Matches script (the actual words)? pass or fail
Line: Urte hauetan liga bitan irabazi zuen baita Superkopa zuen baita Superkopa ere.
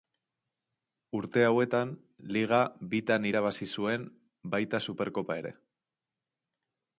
fail